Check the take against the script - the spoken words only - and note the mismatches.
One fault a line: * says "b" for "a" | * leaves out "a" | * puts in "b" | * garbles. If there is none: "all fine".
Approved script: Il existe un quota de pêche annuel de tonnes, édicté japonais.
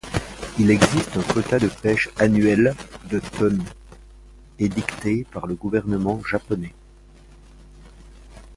* puts in "par le gouvernement"